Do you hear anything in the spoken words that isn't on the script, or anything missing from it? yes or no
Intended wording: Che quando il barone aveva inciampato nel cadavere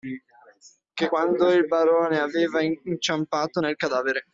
no